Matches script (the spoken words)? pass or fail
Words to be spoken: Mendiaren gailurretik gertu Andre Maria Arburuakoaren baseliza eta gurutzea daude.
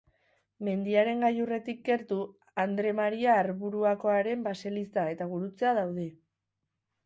pass